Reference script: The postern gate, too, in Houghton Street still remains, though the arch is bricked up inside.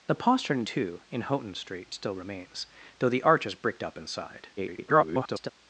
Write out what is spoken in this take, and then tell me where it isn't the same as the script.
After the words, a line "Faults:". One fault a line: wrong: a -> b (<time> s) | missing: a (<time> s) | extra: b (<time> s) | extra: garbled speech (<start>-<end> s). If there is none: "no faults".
The postern too, in Houghton Street still remains, though the arch is bricked up inside. [garbled]
Faults:
missing: gate (0.6 s)
extra: garbled speech (4.6-5.5 s)